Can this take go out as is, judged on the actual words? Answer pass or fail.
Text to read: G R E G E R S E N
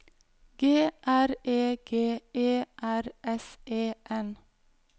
pass